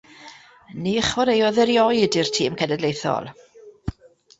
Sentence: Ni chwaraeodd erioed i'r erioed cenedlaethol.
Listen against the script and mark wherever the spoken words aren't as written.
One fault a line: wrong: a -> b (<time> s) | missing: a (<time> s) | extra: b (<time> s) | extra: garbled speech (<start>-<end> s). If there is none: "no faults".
wrong: erioed -> tîm (2.4 s)